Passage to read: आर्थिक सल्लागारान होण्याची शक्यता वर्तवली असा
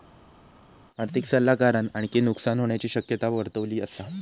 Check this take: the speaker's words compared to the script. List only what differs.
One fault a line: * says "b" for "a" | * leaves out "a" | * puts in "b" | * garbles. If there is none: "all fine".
* puts in "आणखी नुकसान"